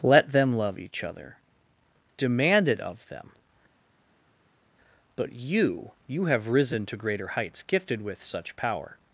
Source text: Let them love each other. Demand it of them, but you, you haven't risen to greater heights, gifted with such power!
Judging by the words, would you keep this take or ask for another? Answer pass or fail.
fail